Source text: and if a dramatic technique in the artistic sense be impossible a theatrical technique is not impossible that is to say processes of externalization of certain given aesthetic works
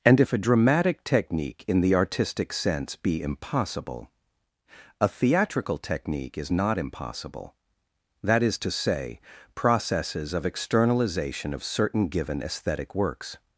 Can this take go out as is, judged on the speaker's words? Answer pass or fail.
pass